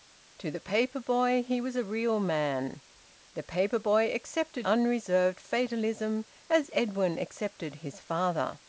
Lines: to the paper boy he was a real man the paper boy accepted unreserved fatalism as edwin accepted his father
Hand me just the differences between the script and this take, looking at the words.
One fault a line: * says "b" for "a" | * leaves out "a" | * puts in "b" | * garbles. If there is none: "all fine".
all fine